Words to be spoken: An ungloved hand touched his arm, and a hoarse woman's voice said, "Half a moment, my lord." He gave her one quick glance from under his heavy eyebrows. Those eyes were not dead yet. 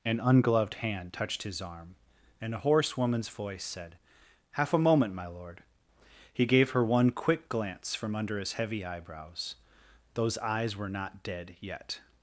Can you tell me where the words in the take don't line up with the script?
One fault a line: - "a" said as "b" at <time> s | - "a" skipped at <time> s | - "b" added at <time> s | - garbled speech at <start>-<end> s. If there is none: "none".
none